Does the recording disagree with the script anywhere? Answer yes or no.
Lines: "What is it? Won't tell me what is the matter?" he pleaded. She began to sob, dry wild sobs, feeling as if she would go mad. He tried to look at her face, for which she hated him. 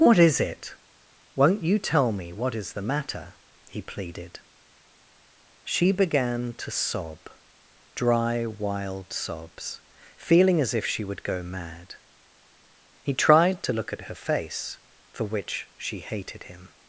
yes